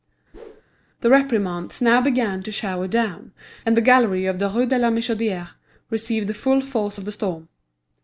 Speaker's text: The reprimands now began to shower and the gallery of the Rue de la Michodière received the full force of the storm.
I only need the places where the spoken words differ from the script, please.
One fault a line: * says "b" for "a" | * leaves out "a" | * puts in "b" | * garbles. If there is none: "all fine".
* puts in "down"